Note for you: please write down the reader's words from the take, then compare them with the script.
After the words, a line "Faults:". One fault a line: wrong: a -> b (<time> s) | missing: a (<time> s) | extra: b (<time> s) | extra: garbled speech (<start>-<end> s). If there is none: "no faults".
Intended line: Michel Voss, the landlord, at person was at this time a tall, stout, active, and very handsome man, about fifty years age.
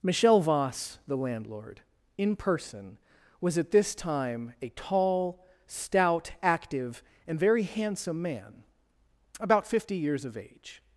Michel Voss, the landlord, in person was at this time a tall, stout, active, and very handsome man, about fifty years of age.
Faults:
wrong: at -> in (2.2 s)
extra: of (10.2 s)